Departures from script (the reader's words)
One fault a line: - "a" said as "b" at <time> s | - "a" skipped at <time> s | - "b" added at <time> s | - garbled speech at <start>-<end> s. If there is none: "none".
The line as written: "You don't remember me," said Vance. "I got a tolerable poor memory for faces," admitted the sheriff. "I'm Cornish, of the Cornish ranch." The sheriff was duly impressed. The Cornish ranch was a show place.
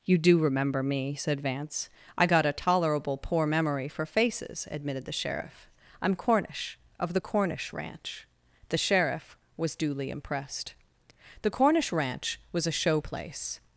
- "don't" said as "do" at 0.2 s